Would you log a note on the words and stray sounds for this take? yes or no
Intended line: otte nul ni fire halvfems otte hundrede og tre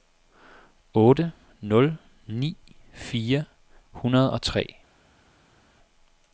yes